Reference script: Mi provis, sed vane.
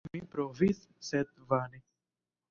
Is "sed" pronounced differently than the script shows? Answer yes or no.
no